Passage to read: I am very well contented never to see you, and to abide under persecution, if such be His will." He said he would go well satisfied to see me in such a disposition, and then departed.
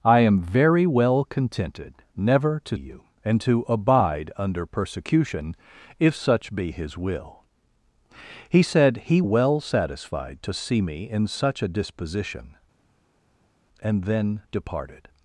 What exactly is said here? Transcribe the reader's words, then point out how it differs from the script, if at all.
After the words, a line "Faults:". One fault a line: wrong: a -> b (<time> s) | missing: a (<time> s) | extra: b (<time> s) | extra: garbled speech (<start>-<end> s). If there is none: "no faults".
I am very well contented never to you, and to abide under persecution, if such be His will." He said he well satisfied to see me in such a disposition, and then departed.
Faults:
missing: see (2.8 s)
missing: would go (9.2 s)